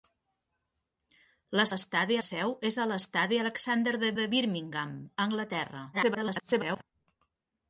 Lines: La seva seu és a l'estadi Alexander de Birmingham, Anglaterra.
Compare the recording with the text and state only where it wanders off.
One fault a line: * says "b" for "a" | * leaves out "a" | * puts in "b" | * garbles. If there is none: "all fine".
* says "l'estadi" for "seva"
* puts in "de"
* garbles